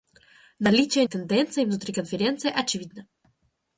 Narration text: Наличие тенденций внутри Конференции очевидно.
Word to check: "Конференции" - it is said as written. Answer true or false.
true